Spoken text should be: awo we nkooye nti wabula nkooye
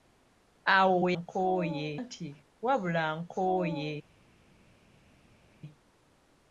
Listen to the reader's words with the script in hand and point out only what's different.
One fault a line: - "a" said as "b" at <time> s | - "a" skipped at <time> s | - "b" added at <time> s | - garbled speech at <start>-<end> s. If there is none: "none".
none